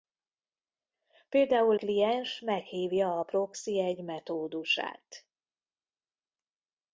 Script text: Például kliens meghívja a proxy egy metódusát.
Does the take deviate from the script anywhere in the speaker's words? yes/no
no